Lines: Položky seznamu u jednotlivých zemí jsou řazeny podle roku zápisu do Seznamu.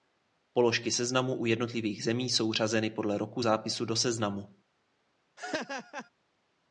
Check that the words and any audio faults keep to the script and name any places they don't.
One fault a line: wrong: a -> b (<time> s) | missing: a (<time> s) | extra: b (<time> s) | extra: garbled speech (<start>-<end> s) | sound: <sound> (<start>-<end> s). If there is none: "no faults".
sound: laugh (5.4-6.1 s)